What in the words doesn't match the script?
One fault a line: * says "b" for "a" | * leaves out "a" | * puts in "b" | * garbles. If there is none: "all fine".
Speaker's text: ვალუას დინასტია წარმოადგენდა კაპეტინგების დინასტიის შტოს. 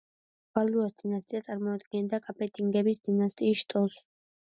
all fine